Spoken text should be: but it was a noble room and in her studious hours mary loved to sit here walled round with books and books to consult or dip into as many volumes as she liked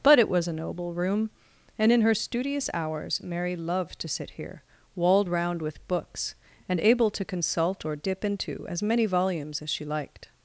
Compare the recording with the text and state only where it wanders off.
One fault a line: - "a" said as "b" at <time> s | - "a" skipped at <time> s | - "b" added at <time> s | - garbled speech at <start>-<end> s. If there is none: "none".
- "books" said as "able" at 6.8 s